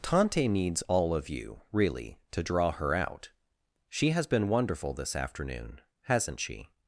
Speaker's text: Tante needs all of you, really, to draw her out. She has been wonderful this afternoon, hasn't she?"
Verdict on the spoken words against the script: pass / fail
pass